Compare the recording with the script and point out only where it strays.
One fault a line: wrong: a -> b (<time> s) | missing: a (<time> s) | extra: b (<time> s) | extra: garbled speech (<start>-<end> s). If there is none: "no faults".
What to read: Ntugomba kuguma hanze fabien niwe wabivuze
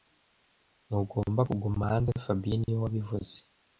no faults